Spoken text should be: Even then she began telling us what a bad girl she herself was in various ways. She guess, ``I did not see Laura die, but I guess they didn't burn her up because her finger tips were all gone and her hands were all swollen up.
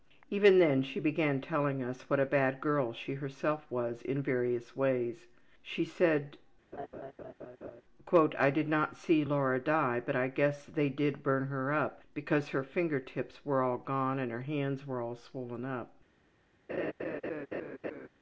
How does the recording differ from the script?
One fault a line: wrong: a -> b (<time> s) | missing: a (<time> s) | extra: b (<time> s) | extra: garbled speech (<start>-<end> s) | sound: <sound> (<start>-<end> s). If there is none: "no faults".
wrong: guess -> said (5.8 s)
sound: laugh (6.7-7.8 s)
wrong: didn't -> did (10.9 s)
sound: laugh (16.7-18.1 s)